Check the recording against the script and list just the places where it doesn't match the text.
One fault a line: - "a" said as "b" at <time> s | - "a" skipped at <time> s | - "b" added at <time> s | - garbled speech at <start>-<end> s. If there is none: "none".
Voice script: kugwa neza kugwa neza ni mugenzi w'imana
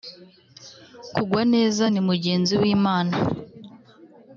- "kugwa neza" skipped at 1.9 s